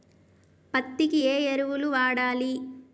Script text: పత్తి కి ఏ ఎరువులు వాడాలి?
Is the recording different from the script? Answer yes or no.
no